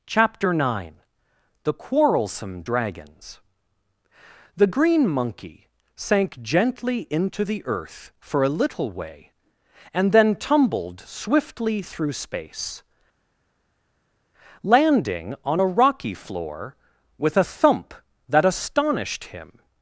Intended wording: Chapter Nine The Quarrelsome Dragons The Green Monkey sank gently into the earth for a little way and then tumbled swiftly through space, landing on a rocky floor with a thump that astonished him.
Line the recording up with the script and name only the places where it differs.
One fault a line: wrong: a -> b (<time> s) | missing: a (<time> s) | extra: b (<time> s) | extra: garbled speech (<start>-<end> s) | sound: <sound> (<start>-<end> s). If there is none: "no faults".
no faults